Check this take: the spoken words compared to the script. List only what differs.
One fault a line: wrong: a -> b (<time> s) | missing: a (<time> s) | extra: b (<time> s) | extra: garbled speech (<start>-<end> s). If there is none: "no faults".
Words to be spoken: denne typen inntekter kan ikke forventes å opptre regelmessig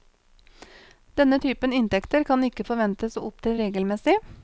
no faults